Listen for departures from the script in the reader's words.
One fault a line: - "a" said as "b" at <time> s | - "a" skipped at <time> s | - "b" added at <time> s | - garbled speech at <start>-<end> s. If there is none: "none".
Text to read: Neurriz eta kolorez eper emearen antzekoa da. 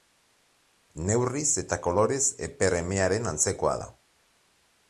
none